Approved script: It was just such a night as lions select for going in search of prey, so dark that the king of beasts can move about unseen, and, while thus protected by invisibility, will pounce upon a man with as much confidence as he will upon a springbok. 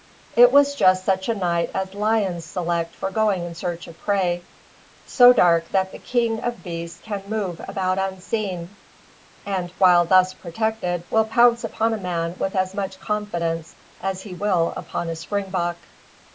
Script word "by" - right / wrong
wrong